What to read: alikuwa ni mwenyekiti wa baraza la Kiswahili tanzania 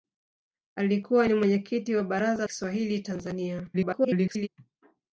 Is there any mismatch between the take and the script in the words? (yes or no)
yes